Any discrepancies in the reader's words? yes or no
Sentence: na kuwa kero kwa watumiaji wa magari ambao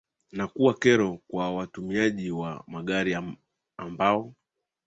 no